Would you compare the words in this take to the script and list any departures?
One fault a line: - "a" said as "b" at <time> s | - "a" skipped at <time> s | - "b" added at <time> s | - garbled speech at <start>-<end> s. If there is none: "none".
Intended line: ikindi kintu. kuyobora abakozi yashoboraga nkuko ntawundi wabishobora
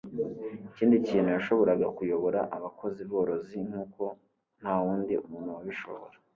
- "yashoboraga" added at 1.4 s
- "yashoboraga" said as "borozi" at 3.1 s
- "muntu" added at 5.3 s